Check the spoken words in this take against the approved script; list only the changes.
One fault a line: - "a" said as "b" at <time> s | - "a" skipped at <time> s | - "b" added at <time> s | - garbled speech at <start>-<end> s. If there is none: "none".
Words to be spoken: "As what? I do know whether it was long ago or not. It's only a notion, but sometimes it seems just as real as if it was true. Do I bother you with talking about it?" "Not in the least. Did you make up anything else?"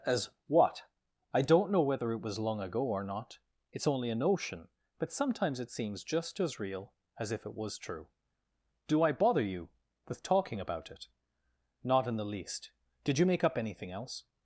- "do" said as "don't" at 1.4 s